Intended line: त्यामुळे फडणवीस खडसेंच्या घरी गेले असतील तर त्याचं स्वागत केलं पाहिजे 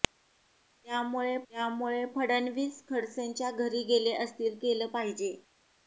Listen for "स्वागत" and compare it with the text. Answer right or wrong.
wrong